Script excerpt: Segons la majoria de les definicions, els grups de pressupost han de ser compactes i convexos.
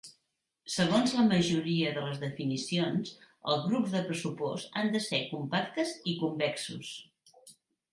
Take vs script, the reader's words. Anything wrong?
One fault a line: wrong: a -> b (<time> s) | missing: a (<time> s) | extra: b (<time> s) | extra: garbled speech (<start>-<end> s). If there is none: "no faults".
no faults